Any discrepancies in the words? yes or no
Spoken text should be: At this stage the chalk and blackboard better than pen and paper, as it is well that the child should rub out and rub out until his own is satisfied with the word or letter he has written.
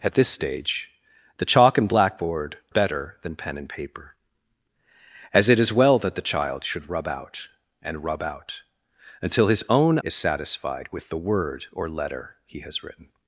no